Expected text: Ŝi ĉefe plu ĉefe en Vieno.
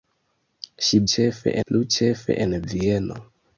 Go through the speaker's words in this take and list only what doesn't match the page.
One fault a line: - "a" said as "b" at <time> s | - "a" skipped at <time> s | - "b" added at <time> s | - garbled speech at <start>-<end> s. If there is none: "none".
none